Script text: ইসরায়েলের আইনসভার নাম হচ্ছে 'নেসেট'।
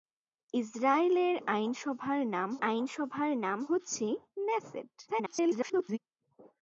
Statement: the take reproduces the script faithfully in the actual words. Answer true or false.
false